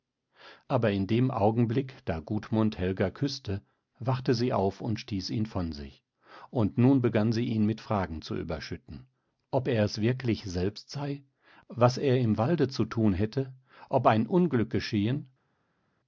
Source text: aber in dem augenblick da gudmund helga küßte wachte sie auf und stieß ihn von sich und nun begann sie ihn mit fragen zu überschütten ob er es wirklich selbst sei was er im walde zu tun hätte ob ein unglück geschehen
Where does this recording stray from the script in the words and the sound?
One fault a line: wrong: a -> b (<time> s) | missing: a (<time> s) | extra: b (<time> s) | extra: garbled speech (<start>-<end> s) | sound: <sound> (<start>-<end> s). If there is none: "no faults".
no faults